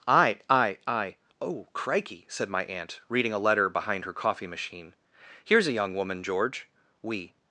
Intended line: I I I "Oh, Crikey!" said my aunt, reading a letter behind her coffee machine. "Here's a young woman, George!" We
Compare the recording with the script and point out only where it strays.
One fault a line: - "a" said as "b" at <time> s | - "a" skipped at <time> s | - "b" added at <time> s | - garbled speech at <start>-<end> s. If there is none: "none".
none